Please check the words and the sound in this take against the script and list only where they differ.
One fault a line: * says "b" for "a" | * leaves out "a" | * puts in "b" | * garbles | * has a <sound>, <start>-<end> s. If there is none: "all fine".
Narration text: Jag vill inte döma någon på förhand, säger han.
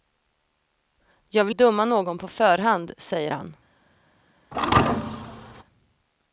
* leaves out "inte"
* has a thud, 4.5-5.6 s